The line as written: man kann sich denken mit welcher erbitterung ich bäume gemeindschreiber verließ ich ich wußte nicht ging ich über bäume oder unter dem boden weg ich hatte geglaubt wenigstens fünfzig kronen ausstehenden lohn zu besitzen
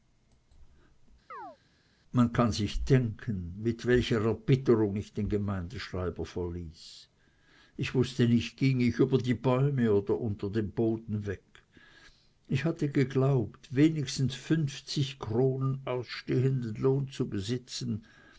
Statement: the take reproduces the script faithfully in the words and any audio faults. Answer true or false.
false